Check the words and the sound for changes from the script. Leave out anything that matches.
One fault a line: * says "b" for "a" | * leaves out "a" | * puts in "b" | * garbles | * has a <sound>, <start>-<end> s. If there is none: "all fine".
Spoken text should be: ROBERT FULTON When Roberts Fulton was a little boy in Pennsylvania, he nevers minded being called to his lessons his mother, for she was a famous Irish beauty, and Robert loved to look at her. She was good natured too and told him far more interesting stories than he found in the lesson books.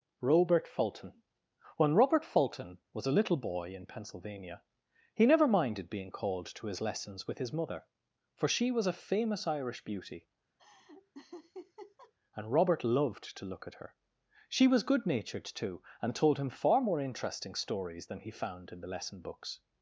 * says "Robert" for "Roberts"
* says "never" for "nevers"
* puts in "with"
* has a laugh, 10.6-12.1 s